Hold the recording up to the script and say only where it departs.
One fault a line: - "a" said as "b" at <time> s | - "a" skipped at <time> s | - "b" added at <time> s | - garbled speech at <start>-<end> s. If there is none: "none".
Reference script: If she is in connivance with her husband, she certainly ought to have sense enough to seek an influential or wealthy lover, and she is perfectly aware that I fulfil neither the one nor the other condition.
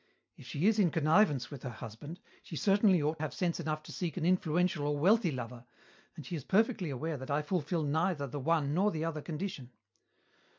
- "to" skipped at 3.2 s